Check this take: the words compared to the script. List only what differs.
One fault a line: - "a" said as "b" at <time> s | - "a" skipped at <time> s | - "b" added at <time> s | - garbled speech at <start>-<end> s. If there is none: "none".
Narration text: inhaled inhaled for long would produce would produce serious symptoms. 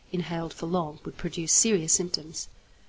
- "inhaled" skipped at 0.5 s
- "would produce" skipped at 1.5 s